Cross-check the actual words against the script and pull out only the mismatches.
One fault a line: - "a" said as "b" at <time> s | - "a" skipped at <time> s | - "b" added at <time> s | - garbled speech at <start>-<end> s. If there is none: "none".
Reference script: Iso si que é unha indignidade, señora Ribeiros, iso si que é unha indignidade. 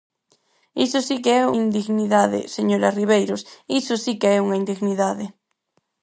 - "unha" skipped at 1.4 s